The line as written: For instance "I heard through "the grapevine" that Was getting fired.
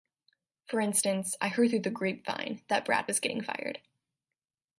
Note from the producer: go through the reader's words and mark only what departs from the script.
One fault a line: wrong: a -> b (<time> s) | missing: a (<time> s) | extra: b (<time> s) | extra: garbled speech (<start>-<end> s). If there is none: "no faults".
extra: Brad (2.9 s)